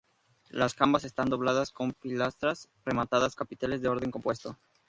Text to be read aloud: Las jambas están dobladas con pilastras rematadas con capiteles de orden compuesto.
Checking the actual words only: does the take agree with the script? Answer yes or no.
no